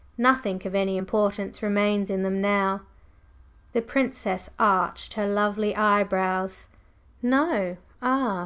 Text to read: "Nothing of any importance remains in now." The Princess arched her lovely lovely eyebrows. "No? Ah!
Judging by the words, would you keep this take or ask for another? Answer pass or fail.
fail